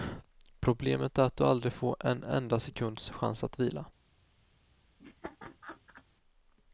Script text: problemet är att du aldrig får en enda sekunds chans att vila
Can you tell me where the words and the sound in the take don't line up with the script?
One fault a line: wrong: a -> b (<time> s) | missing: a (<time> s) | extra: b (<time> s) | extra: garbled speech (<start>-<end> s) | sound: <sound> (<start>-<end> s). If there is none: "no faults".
sound: laugh (5.0-6.0 s)